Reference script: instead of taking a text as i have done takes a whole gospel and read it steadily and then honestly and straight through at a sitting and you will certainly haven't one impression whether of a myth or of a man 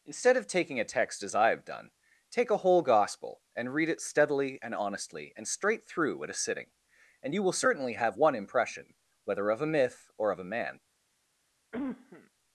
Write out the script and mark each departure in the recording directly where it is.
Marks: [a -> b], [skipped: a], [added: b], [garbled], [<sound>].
instead of taking a text as i have done [takes -> take] a whole gospel and read it steadily and [skipped: then] honestly and straight through at a sitting and you will certainly [haven't -> have] one impression whether of a myth or of a man [cough]